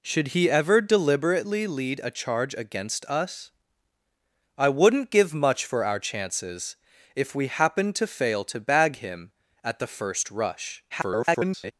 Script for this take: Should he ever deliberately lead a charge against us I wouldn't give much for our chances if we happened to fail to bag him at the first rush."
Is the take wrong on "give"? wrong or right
right